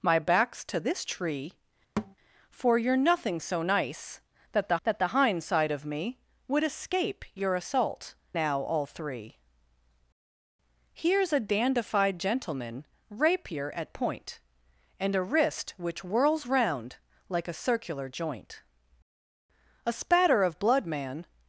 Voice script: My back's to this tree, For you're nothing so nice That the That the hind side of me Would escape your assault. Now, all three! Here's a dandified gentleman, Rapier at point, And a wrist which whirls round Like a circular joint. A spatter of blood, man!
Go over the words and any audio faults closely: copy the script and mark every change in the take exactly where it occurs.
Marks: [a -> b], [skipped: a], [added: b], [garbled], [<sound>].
My back's to this tree, [thud] For you're nothing so nice That the That the hind side of me Would escape your assault. Now, all three! Here's a dandified gentleman, Rapier at point, And a wrist which whirls round Like a circular joint. A spatter of blood, man!